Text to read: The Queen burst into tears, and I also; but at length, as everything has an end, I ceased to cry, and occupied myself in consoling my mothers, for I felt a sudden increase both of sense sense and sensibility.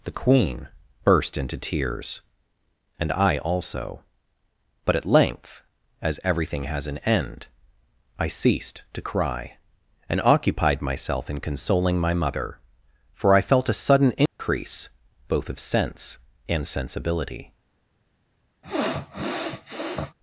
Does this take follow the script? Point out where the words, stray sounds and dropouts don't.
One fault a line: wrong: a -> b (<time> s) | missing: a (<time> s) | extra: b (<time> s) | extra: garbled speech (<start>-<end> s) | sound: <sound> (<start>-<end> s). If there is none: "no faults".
wrong: mothers -> mother (12.2 s)
sound: dropout (14.3-14.4 s)
missing: sense (16.2 s)
sound: sniff (18.6-20.1 s)